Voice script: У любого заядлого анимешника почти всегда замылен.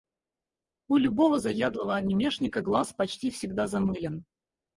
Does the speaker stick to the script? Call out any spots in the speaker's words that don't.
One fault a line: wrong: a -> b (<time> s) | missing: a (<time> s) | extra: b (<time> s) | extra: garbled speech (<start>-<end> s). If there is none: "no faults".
extra: глаз (2.6 s)